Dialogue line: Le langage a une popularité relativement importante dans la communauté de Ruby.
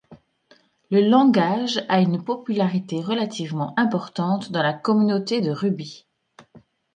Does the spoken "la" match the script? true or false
true